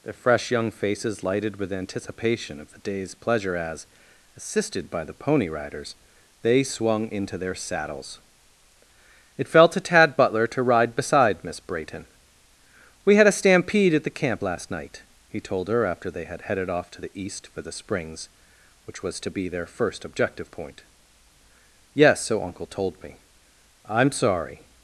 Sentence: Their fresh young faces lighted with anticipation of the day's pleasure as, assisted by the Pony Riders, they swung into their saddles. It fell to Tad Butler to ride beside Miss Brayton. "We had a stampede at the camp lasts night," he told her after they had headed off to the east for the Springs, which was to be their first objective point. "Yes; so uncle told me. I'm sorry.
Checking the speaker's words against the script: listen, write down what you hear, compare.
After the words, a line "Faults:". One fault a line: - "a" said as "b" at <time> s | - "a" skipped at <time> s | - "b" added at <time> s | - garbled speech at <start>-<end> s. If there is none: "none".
Their fresh young faces lighted with anticipation of the day's pleasure as, assisted by the Pony Riders, they swung into their saddles. It fell to Tad Butler to ride beside Miss Brayton. "We had a stampede at the camp last night," he told her after they had headed off to the east for the Springs, which was to be their first objective point. "Yes; so uncle told me. I'm sorry.
Faults:
- "lasts" said as "last" at 14.4 s